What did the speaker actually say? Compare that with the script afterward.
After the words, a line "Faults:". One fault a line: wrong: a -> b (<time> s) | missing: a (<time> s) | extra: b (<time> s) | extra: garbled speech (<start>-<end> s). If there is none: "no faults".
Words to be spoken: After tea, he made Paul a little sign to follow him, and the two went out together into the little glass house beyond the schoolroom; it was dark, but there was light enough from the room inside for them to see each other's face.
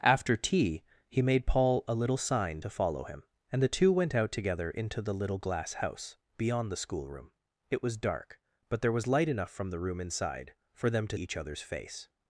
After tea, he made Paul a little sign to follow him, and the two went out together into the little glass house beyond the schoolroom; it was dark, but there was light enough from the room inside for them to each other's face.
Faults:
missing: see (11.2 s)